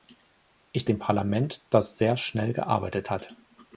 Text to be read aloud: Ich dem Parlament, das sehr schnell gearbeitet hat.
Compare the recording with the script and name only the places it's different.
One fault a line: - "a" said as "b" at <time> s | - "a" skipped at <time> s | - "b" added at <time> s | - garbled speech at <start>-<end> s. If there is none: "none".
none